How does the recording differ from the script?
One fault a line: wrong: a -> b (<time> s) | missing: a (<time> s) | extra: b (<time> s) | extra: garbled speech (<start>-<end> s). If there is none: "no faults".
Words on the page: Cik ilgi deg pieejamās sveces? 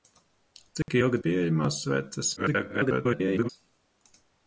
missing: deg (1.2 s)
extra: garbled speech (2.4-3.5 s)